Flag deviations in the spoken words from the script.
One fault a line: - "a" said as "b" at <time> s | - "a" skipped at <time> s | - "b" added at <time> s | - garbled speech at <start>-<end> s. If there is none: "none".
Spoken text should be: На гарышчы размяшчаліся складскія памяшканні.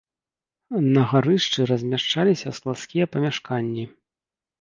none